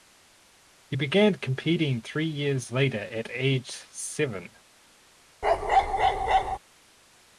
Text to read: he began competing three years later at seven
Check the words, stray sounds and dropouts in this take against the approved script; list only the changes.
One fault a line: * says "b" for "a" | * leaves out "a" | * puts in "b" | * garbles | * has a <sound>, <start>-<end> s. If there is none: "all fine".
* puts in "age"
* has a bark, 5.4-6.6 s